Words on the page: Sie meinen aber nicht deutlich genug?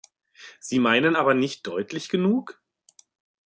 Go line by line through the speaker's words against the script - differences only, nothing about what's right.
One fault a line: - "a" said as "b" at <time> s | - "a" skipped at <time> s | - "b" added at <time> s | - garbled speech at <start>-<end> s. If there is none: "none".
none